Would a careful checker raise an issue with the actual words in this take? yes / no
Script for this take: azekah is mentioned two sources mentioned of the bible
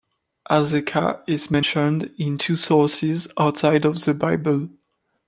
yes